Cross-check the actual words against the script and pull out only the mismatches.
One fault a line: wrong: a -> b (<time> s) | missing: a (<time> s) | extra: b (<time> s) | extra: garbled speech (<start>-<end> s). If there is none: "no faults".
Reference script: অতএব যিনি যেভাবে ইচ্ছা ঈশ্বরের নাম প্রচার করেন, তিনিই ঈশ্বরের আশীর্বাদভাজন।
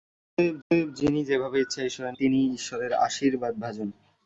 extra: অতএব (0.7 s)
missing: নাম প্রচার করেন (2.1 s)